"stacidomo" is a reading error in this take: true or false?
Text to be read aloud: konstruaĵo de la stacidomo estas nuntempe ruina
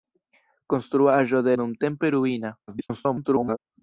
true